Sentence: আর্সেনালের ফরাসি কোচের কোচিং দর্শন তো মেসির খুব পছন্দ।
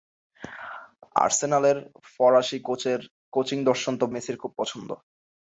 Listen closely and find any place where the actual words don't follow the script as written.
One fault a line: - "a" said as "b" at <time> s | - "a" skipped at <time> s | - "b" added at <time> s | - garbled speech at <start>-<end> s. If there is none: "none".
none